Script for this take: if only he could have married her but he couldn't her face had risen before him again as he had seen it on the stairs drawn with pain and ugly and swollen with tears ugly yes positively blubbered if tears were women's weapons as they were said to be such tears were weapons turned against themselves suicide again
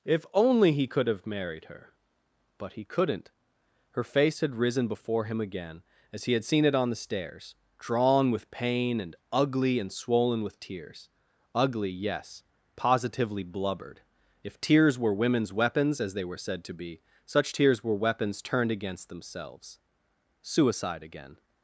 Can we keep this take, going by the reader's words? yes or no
yes